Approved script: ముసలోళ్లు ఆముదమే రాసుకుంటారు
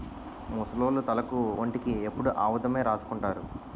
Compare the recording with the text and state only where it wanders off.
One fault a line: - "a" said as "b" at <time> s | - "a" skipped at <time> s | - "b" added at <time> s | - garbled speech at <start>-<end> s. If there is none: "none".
- "తలకు ఒంటికి ఎప్పుడు" added at 1.1 s